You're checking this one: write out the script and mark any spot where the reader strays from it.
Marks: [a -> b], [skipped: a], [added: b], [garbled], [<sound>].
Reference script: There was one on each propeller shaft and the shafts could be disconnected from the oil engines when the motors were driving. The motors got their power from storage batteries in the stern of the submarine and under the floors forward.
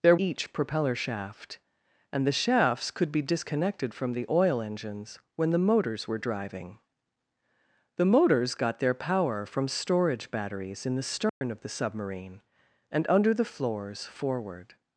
There [skipped: was one on] each propeller shaft and the shafts could be disconnected from the oil engines when the motors were driving. The motors got their power from storage batteries in the stern [dropout] of the submarine and under the floors forward.